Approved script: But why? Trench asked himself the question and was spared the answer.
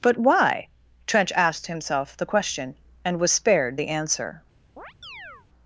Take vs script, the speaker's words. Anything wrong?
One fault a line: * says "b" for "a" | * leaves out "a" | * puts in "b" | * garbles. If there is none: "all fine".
all fine